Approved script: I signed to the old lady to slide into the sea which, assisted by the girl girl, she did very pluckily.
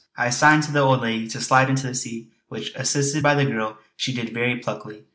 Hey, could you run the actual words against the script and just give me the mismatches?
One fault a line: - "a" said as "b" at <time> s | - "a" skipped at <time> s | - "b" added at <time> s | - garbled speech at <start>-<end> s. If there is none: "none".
- "girl" skipped at 3.8 s